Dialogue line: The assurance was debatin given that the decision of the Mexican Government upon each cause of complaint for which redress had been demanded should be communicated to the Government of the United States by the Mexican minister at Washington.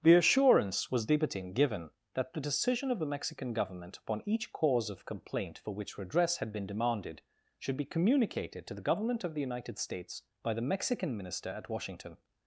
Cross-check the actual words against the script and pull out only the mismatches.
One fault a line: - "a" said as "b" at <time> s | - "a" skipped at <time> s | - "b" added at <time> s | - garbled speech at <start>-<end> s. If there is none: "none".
none